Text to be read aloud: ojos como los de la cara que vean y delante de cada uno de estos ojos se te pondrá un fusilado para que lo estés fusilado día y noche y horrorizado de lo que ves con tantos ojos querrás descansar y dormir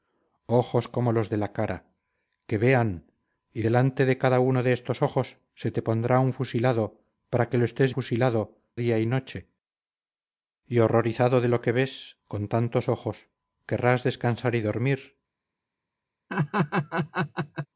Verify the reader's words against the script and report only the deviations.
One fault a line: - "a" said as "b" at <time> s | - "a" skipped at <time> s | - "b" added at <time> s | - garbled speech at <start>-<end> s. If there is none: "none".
none